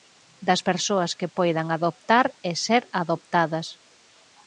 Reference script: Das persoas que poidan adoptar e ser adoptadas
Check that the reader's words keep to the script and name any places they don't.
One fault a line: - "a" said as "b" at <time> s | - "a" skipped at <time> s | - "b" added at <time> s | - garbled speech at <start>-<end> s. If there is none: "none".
none